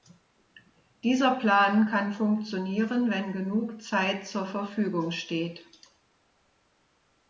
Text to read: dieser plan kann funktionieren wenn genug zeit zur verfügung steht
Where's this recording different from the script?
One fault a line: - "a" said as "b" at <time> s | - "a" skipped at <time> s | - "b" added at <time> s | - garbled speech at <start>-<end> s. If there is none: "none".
none